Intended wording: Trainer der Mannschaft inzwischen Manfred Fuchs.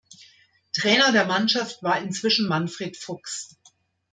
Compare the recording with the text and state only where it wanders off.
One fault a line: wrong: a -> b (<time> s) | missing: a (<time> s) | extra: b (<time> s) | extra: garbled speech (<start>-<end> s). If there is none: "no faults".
extra: war (1.8 s)